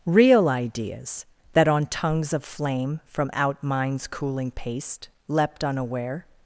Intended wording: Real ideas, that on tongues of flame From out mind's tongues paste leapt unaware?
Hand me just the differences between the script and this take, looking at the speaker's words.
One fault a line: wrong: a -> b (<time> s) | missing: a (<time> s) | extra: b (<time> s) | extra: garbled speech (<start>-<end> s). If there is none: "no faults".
wrong: tongues -> cooling (4.1 s)